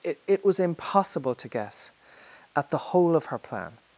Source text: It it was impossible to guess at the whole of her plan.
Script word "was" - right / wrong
right